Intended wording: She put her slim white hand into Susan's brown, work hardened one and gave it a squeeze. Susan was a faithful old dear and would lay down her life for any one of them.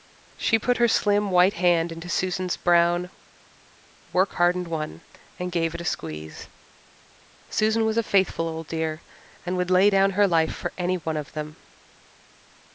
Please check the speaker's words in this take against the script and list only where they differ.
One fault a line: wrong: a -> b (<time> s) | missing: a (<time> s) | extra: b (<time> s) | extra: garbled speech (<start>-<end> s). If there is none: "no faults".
no faults